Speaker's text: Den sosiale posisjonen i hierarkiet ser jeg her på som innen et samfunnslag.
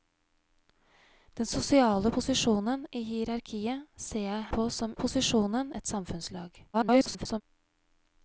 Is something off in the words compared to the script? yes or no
yes